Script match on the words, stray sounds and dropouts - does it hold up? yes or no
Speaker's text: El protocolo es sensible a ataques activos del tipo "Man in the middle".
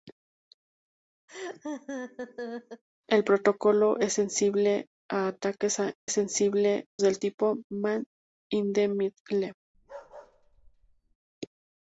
no